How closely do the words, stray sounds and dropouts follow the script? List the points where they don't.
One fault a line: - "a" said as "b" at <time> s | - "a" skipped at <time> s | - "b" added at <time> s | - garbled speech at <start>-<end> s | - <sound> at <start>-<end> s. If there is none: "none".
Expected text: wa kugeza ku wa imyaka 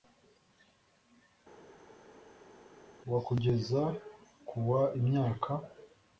none